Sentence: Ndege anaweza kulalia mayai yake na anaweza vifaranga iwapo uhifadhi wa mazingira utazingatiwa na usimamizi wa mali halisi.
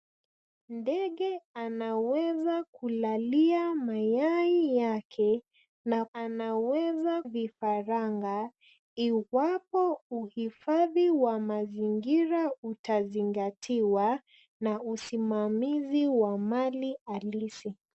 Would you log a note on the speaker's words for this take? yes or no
no